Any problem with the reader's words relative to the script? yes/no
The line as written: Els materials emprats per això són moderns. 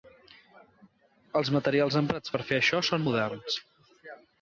yes